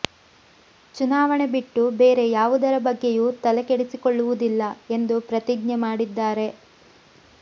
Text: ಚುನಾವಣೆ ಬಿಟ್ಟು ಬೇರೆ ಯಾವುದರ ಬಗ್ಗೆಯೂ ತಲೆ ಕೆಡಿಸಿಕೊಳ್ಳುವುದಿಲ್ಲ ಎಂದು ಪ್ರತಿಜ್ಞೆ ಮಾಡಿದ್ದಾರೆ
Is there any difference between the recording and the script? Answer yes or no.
no